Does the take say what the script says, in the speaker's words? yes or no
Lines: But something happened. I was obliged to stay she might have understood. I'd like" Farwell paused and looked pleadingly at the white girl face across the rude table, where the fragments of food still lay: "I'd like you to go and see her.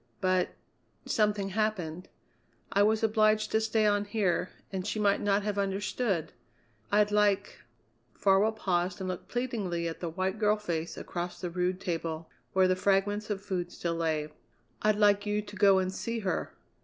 no